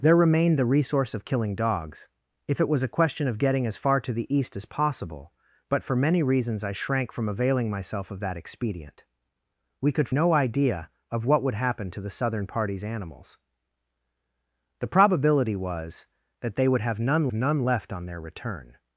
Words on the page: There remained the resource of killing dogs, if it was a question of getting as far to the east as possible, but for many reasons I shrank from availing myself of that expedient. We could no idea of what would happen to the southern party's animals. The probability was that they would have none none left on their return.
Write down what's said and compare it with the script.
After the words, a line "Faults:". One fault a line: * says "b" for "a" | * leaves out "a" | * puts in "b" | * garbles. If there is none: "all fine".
There remained the resource of killing dogs, if it was a question of getting as far to the east as possible, but for many reasons I shrank from availing myself of that expedient. We could no idea of what would happen to the southern party's animals. The probability was that they would have none none left on their return.
Faults:
all fine